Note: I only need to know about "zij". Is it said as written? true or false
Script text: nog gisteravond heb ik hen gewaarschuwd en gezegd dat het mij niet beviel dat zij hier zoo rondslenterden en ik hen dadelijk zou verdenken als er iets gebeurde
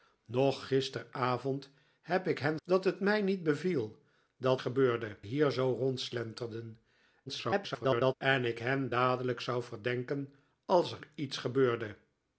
false